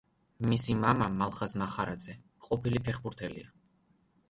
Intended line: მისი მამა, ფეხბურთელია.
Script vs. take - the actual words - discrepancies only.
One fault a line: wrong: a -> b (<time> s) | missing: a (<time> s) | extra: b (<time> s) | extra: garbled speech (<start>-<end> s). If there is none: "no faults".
extra: მალხაზ მახარაძე ყოფილი (1.2 s)